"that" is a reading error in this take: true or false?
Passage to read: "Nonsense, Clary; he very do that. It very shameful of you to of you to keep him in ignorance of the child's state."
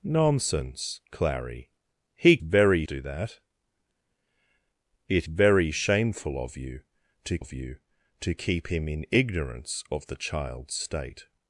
false